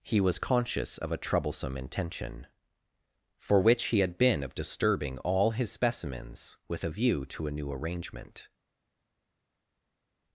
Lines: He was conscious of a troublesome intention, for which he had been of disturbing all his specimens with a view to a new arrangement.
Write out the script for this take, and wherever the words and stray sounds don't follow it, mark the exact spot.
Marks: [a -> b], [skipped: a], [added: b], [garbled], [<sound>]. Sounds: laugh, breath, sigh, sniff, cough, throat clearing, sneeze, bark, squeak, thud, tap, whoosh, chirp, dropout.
He was conscious of a troublesome intention, for which he had been of disturbing all his specimens with a view to a new arrangement.